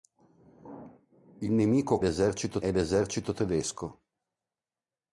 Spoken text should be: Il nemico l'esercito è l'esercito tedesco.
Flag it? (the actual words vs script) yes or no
no